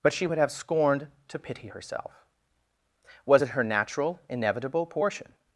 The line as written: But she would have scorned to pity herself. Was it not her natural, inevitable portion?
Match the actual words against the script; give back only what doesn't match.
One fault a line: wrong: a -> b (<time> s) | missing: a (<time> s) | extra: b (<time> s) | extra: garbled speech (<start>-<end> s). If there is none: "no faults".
missing: not (3.5 s)